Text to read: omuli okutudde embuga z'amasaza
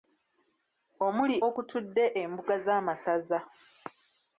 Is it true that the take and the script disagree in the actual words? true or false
false